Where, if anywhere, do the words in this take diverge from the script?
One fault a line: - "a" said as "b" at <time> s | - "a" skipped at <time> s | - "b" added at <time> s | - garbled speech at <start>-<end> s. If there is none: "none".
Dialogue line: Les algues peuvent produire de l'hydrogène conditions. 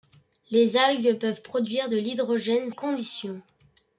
none